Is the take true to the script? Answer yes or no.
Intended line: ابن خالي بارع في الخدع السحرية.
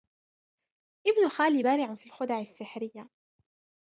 yes